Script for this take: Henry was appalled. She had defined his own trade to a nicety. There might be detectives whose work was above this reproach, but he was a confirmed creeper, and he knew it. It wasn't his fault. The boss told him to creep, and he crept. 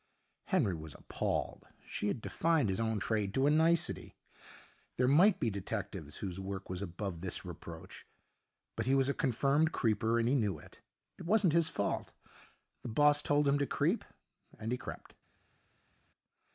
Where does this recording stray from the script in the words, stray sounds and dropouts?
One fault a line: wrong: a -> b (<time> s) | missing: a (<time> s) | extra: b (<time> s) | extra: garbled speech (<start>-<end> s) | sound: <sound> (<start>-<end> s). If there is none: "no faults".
no faults